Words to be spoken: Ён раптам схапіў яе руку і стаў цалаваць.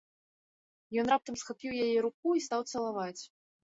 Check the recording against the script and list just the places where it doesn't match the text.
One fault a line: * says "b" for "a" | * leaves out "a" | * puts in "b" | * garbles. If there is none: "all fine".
all fine